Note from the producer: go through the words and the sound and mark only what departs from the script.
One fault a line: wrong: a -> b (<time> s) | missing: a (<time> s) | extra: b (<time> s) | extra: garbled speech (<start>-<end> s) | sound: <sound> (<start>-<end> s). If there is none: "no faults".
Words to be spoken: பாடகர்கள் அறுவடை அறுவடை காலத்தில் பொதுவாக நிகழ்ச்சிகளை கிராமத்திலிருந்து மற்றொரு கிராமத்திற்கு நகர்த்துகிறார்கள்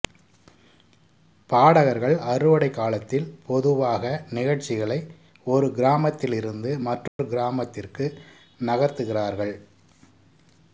missing: அறுவடை (2.7 s)
extra: ஒரு (5.5 s)
sound: dropout (7.1-7.2 s)